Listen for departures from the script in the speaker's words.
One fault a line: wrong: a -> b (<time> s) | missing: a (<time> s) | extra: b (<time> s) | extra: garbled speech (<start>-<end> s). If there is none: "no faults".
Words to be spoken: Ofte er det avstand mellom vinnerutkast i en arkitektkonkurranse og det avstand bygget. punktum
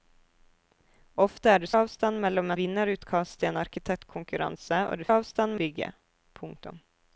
no faults